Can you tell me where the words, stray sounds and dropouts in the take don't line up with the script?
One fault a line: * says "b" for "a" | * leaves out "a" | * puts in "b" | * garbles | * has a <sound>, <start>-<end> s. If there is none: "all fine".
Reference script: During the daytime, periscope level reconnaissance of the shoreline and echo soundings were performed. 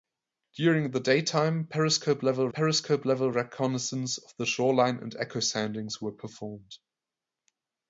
* puts in "periscope level"